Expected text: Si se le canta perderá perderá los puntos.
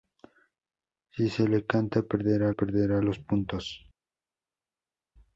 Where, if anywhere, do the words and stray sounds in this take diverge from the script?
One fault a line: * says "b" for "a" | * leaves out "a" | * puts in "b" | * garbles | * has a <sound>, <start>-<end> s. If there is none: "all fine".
all fine